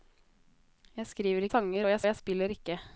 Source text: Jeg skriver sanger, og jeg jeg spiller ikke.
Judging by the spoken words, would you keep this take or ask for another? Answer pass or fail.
pass